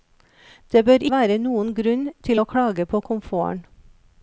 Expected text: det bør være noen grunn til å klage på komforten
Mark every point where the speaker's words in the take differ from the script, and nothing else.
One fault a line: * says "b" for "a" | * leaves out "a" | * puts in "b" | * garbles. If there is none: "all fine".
all fine